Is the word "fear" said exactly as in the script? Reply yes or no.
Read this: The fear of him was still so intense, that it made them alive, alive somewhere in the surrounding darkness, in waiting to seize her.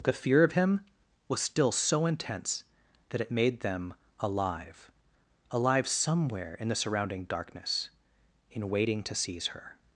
yes